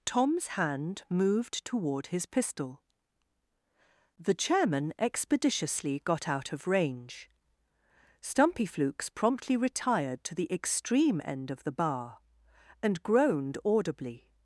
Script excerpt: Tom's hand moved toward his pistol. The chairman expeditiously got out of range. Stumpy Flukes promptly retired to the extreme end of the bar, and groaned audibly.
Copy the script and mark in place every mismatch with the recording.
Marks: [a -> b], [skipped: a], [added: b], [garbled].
Tom's hand moved toward his pistol. The chairman expeditiously got out of range. Stumpy Flukes promptly retired to the extreme end of the bar, and groaned audibly.